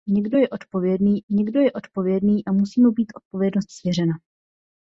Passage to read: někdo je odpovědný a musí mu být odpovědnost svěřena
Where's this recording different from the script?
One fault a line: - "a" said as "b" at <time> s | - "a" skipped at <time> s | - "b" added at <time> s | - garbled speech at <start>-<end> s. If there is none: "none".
- "někdo je odpovědný" added at 1.3 s